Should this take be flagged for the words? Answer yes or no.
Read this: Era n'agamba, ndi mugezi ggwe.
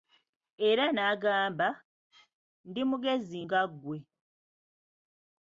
yes